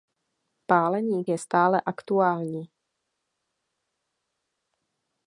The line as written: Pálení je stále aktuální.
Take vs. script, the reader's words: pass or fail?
pass